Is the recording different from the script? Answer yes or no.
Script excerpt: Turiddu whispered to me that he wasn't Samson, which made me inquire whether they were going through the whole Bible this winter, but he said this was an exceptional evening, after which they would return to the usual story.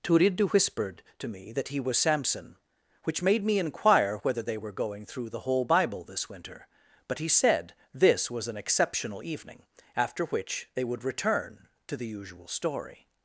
yes